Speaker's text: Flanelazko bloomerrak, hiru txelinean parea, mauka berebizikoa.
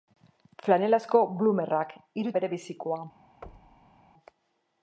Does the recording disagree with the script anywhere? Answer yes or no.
yes